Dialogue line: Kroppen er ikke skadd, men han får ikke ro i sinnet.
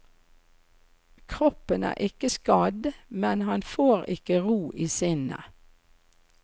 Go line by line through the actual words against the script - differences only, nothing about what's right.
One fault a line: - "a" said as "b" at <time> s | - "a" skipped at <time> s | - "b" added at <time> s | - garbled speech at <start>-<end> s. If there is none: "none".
none